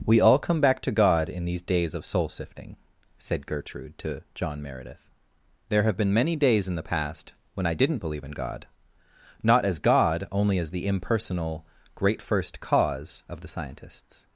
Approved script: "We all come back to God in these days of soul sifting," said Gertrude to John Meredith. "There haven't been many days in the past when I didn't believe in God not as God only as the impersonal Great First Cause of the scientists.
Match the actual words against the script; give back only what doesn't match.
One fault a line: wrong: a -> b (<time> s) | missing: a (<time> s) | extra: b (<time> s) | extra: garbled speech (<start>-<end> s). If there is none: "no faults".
wrong: haven't -> have (5.8 s)